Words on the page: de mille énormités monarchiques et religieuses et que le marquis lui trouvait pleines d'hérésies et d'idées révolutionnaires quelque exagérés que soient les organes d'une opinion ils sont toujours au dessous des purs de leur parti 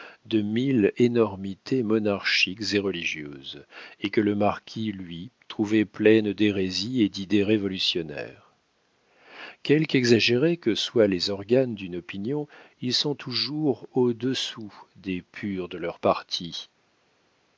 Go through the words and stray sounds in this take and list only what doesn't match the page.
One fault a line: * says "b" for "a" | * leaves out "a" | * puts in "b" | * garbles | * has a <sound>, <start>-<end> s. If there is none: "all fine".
all fine